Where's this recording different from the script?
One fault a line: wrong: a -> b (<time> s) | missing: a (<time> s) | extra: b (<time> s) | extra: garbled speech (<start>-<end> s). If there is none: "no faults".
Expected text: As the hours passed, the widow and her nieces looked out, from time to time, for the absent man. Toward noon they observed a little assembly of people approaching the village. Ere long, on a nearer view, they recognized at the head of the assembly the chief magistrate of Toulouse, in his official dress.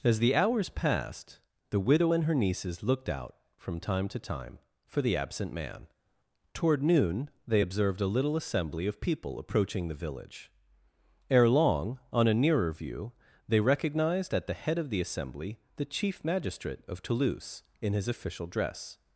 no faults